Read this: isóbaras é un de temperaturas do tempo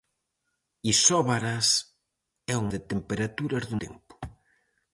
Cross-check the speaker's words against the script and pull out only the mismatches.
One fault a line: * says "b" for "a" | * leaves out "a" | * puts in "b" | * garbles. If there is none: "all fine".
all fine